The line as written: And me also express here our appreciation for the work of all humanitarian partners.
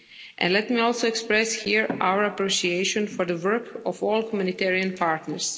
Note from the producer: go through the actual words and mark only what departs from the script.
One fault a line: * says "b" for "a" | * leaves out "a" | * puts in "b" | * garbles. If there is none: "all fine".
* puts in "let"